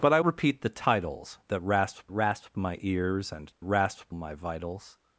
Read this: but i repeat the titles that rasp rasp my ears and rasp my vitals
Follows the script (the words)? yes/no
yes